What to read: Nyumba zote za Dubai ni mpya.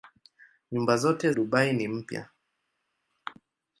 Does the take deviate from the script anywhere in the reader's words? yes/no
yes